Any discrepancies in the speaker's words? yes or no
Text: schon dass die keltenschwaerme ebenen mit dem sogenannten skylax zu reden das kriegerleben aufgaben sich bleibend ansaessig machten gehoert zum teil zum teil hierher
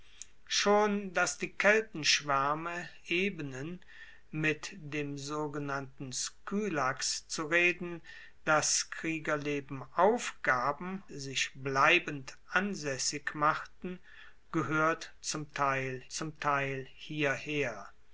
no